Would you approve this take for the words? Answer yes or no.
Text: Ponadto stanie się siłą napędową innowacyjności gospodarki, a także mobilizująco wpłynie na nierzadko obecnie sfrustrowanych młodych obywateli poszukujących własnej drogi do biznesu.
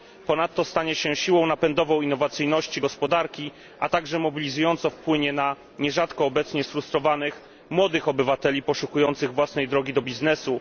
yes